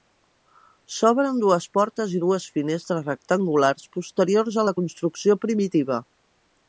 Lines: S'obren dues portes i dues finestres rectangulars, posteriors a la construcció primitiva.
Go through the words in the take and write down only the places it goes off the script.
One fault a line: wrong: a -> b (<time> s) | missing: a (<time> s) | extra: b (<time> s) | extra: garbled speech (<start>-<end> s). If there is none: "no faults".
no faults